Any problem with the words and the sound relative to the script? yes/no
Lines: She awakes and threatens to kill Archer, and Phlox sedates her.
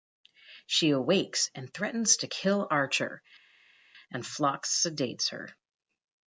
no